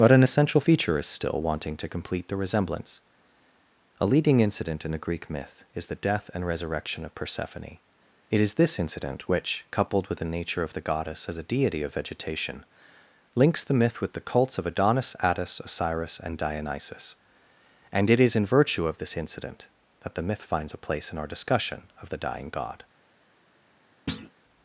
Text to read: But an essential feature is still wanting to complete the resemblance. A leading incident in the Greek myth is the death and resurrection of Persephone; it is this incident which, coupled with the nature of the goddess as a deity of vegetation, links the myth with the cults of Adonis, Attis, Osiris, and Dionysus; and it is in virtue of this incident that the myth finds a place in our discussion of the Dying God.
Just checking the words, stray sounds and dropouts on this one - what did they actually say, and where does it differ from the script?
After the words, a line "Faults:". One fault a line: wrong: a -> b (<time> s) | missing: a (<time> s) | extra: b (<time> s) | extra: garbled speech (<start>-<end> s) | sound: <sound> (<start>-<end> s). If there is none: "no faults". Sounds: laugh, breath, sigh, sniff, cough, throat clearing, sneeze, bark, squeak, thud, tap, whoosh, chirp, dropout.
But an essential feature is still wanting to complete the resemblance. A leading incident in the Greek myth is the death and resurrection of Persephone; it is this incident which, coupled with the nature of the goddess as a deity of vegetation, links the myth with the cults of Adonis, Attis, Osiris, and Dionysus; and it is in virtue of this incident that the myth finds a place in our discussion of the Dying God.
Faults:
sound: thud (24.1-24.3 s)